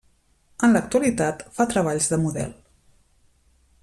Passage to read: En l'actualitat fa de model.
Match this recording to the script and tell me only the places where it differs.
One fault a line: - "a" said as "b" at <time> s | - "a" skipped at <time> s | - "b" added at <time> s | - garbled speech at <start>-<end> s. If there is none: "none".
- "treballs" added at 1.7 s